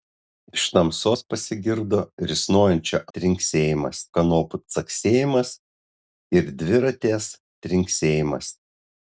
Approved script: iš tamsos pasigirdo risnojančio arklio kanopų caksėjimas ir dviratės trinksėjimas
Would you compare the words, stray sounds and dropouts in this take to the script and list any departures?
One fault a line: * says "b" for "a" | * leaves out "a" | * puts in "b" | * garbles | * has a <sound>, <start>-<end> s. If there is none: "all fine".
* says "trinksėjimas" for "arklio"